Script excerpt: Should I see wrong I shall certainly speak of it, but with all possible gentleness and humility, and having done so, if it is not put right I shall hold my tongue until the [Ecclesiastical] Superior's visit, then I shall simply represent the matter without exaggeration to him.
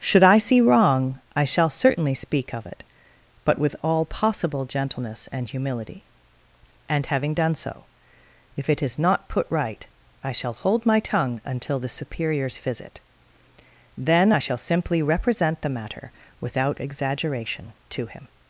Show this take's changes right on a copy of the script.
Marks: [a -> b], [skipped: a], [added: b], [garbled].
Should I see wrong I shall certainly speak of it, but with all possible gentleness and humility, and having done so, if it is not put right I shall hold my tongue until the [skipped: [Ecclesiastical]] Superior's visit, then I shall simply represent the matter without exaggeration to him.